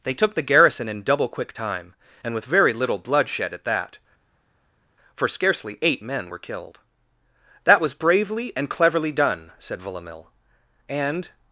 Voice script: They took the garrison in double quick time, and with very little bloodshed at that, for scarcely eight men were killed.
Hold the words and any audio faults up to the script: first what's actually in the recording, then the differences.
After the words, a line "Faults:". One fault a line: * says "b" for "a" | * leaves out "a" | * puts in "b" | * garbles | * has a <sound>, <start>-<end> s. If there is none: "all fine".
They took the garrison in double quick time, and with very little bloodshed at that, for scarcely eight men were killed. "That was bravely and cleverly done!" said Villamil. And
Faults:
* puts in "That was bravely and cleverly done said Villamil And"